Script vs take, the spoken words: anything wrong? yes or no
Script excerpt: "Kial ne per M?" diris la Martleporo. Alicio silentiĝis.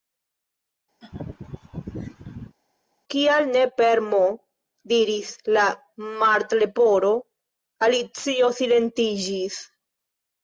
no